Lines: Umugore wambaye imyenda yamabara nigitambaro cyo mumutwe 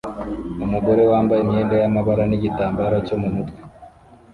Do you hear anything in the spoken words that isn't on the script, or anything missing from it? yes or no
no